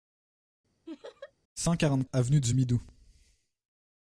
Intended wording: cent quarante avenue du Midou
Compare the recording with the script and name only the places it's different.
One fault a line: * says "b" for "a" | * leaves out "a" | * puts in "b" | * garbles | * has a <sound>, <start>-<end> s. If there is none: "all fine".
* has a laugh, 0.9-1.3 s